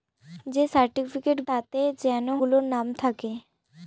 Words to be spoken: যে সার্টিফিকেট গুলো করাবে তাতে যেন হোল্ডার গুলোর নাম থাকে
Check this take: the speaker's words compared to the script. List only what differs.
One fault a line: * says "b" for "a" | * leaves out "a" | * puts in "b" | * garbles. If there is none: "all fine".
* leaves out "গুলো করাবে"
* leaves out "হোল্ডার"